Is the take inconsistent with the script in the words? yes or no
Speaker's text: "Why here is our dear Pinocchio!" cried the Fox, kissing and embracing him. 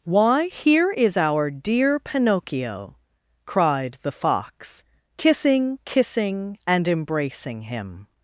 yes